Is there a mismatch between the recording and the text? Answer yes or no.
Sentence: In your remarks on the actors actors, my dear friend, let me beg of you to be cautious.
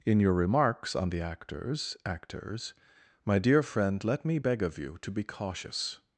no